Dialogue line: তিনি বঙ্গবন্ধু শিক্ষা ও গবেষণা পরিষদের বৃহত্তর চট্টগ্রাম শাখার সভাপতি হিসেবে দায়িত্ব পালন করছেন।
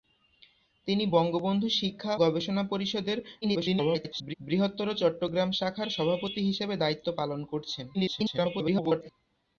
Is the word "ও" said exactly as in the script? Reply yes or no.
no